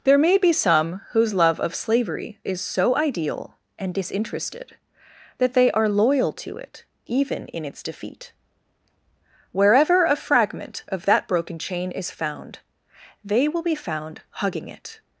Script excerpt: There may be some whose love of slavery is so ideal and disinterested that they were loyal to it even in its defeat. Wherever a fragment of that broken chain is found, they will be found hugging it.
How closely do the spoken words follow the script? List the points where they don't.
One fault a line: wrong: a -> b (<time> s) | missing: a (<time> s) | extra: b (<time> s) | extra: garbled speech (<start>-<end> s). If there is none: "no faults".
wrong: were -> are (5.7 s)